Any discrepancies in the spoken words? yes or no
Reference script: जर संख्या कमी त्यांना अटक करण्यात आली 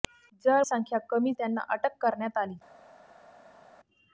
no